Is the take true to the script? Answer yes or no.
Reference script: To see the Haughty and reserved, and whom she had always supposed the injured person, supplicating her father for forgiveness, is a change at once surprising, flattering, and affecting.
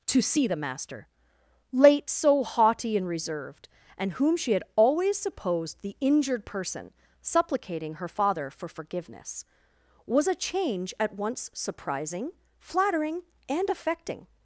no